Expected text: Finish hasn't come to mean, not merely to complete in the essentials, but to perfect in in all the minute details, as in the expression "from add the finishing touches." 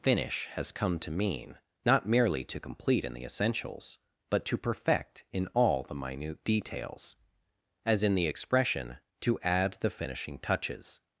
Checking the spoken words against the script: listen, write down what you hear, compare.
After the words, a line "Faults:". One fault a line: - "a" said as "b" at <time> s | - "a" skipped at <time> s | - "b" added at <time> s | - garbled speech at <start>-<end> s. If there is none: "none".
Finish has come to mean, not merely to complete in the essentials, but to perfect in all the minute details, as in the expression "to add the finishing touches."
Faults:
- "hasn't" said as "has" at 0.5 s
- "in" skipped at 5.5 s
- "from" said as "to" at 9.2 s